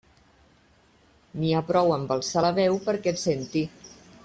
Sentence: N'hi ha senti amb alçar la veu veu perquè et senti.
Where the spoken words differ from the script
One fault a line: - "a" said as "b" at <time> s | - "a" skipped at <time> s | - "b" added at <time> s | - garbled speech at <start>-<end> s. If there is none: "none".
- "senti" said as "prou" at 1.7 s
- "veu" skipped at 2.8 s